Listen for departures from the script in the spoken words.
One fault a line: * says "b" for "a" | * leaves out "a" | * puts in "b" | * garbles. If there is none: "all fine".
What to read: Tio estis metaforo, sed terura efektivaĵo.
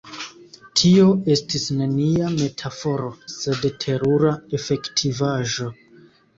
* puts in "nenia"